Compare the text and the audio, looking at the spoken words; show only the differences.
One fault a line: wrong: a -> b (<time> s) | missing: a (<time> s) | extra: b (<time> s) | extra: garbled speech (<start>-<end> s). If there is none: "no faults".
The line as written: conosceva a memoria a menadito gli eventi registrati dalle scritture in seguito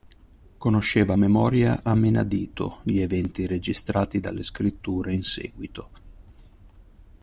no faults